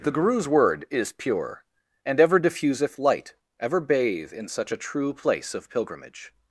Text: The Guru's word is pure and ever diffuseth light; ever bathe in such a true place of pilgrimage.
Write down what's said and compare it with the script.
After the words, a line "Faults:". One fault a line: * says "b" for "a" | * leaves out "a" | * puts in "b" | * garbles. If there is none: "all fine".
The Guru's word is pure and ever diffuseth light; ever bathe in such a true place of pilgrimage.
Faults:
all fine